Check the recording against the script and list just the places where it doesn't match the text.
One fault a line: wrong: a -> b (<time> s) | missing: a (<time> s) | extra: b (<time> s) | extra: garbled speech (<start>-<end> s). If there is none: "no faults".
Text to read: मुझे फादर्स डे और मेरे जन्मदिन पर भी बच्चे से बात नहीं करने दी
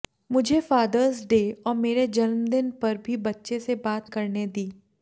missing: नहीं (4.1 s)